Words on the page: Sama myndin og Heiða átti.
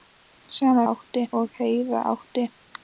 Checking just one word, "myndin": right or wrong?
wrong